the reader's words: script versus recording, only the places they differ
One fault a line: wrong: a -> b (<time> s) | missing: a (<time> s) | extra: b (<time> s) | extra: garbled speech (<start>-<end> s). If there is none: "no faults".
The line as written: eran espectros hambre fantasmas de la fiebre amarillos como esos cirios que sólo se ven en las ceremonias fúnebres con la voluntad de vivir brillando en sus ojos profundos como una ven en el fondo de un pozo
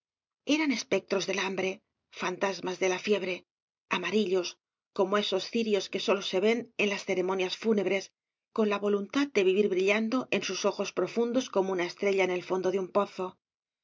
extra: del (1.3 s)
wrong: ven -> estrella (11.8 s)